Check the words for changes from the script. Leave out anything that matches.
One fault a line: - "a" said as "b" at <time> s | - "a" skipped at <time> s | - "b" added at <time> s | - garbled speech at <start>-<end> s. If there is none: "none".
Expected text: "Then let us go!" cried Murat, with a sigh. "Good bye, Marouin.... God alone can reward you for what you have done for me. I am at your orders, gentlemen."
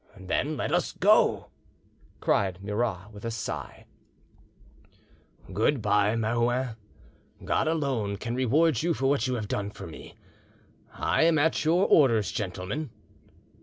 none